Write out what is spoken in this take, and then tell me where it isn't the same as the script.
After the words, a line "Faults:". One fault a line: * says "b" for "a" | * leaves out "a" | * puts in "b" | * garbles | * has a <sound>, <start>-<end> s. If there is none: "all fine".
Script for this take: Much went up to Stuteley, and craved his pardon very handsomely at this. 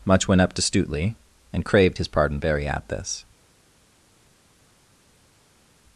Much went up to Stuteley, and craved his pardon very at this.
Faults:
* leaves out "handsomely"